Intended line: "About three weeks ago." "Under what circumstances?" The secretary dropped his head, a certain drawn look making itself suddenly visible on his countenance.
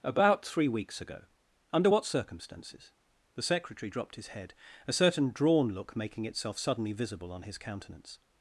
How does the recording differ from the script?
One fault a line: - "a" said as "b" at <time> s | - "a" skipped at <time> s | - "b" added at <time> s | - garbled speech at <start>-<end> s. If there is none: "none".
none